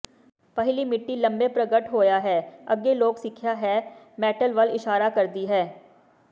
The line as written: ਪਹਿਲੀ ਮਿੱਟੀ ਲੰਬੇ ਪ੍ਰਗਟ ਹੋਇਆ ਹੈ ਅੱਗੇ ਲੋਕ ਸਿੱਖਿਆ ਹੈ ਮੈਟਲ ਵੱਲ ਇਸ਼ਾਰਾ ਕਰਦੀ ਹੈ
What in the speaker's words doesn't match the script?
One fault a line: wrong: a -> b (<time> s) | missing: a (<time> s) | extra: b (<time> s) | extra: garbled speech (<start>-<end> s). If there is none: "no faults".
no faults